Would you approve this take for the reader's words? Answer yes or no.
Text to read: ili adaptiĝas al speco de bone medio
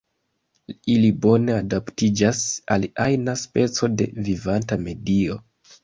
no